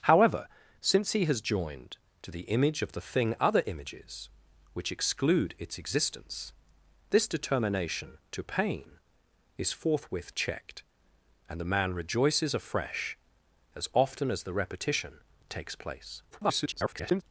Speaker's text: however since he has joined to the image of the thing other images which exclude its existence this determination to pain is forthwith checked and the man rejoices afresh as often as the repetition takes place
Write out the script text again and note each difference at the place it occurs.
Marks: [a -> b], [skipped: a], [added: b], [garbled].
however since he has joined to the image of the thing other images which exclude its existence this determination to pain is forthwith checked and the man rejoices afresh as often as the repetition takes place [garbled]